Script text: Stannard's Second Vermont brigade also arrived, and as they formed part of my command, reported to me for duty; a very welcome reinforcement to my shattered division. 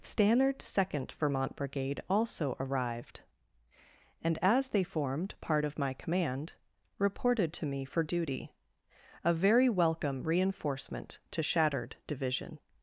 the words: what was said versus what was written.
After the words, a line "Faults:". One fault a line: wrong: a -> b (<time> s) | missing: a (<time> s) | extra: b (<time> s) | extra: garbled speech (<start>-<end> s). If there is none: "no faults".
Stannard's Second Vermont brigade also arrived, and as they formed part of my command, reported to me for duty; a very welcome reinforcement to shattered division.
Faults:
missing: my (11.4 s)